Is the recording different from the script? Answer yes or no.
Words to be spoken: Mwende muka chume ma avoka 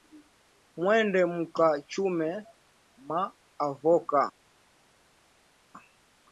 no